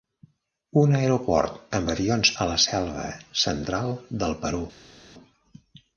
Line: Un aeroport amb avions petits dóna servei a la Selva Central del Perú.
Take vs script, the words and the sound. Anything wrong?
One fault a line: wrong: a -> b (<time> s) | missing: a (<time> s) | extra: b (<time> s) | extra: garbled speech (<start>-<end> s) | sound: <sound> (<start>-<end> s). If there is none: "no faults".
missing: petits dóna servei (2.3 s)